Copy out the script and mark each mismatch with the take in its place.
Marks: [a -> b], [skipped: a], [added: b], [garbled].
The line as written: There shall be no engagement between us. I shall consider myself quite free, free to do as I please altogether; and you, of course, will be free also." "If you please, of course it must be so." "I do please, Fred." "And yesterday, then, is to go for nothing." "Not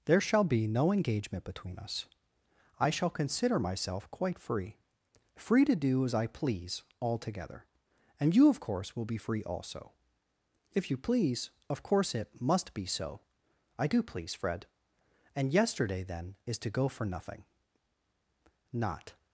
There shall be no engagement between us. I shall consider myself quite free, free to do as I please altogether; and you, of course, will be free also." "If you please, of course it must be so." "I do please, Fred." "And yesterday, then, is to go for nothing." "Not